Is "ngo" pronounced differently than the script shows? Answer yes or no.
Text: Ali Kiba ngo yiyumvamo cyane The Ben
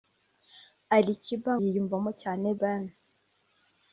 yes